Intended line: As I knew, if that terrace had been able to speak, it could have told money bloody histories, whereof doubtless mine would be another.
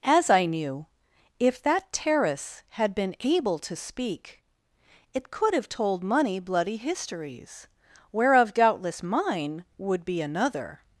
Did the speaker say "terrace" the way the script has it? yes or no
yes